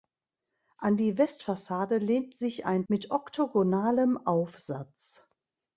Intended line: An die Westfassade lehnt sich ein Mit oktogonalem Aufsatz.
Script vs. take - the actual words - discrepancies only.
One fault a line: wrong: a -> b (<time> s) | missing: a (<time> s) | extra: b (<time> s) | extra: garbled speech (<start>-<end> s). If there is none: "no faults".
no faults